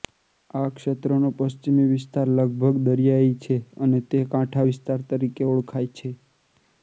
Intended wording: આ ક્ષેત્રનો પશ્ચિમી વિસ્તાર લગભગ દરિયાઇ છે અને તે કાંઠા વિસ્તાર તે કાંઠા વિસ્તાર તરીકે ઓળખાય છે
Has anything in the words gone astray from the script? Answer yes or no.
yes